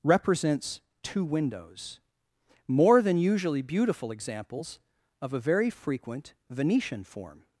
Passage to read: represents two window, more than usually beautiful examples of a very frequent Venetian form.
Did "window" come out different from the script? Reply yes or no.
yes